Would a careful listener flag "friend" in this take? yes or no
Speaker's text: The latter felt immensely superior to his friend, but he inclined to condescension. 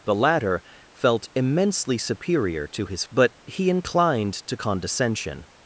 yes